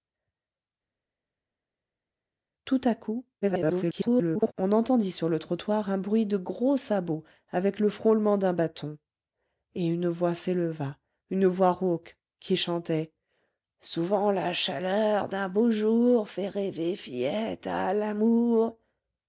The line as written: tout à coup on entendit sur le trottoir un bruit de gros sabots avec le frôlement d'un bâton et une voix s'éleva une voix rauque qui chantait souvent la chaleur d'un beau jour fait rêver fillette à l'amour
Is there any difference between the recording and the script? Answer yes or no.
yes